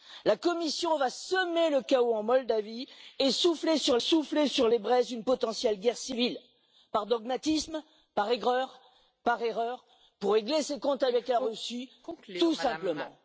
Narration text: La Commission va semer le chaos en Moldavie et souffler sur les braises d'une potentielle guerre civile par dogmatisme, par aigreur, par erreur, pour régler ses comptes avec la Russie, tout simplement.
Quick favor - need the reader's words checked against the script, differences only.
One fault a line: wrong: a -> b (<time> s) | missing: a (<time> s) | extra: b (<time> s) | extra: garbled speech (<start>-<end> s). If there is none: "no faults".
extra: souffler sur (4.0 s)